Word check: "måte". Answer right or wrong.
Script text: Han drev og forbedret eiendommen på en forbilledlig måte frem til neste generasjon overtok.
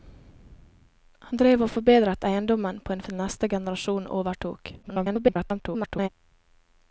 wrong